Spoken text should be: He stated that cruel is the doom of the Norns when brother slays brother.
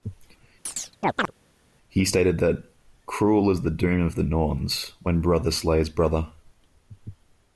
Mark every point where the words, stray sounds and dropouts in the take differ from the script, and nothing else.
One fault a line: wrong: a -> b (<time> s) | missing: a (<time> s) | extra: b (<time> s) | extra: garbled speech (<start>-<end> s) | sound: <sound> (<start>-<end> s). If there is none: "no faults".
sound: chirp (0.7-1.3 s)